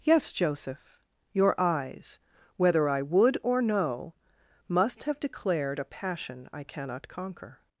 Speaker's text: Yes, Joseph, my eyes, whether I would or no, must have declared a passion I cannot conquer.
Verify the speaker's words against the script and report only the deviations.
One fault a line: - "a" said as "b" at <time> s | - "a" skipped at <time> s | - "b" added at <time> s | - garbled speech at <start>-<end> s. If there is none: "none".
- "my" said as "your" at 1.3 s